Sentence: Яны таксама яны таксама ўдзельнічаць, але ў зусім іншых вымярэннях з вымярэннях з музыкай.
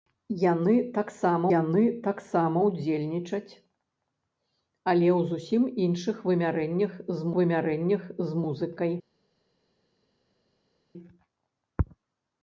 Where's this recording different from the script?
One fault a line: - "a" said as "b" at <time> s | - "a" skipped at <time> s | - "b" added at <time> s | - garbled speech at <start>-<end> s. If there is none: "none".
none